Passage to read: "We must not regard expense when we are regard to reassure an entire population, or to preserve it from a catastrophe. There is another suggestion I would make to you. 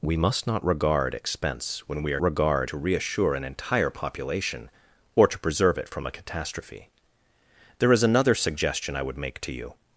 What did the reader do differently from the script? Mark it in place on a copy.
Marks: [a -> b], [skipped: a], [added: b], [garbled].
"We must not regard expense when we are regard to reassure an entire population, or to preserve it from a catastrophe. There is another suggestion I would make to you.